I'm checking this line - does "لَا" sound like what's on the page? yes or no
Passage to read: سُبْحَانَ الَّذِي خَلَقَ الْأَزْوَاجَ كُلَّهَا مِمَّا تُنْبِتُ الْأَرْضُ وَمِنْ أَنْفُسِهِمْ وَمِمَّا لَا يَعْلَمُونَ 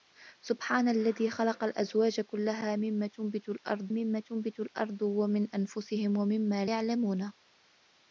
no